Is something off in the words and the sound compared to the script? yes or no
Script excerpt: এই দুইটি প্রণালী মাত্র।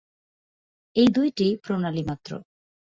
no